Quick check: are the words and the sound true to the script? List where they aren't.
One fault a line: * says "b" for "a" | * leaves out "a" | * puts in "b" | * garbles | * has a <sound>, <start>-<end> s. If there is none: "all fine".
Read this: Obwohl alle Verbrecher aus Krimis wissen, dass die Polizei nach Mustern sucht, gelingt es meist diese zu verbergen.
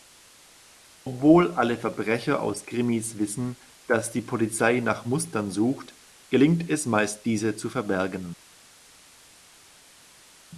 all fine